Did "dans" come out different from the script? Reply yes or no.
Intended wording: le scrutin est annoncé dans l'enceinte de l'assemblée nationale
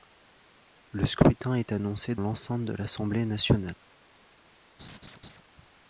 yes